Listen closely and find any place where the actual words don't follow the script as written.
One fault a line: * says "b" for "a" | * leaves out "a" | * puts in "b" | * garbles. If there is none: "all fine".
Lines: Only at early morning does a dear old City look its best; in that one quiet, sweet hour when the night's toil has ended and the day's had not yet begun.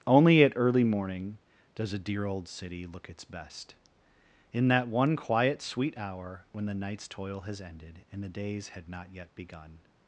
all fine